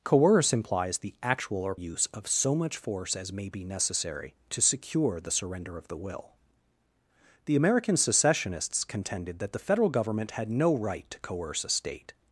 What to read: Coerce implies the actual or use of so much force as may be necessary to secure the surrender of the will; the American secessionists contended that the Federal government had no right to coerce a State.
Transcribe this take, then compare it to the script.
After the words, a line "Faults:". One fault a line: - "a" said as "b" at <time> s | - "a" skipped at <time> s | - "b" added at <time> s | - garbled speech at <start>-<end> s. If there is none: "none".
Coerce implies the actual or use of so much force as may be necessary to secure the surrender of the will; the American secessionists contended that the Federal government had no right to coerce a State.
Faults:
none